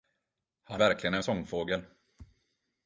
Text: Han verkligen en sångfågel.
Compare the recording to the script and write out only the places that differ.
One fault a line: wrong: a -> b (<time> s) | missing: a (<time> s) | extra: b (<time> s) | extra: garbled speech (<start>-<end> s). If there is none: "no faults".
no faults